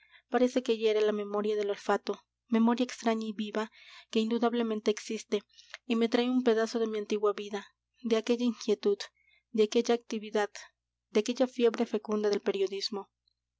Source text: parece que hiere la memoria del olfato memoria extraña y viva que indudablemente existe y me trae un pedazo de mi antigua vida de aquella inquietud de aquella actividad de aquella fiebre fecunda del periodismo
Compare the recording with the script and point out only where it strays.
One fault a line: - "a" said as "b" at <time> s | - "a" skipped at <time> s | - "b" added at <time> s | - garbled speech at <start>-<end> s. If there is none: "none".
none